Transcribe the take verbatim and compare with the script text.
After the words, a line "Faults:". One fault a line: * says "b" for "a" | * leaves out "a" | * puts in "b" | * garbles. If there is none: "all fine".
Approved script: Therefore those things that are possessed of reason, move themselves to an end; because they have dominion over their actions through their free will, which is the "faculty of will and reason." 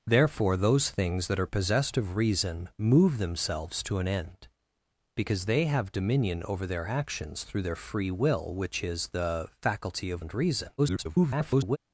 Therefore those things that are possessed of reason, move themselves to an end; because they have dominion over their actions through their free will, which is the "faculty of and reason." [garbled]
Faults:
* leaves out "will"
* garbles